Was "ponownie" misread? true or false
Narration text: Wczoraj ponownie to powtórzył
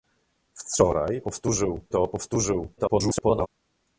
true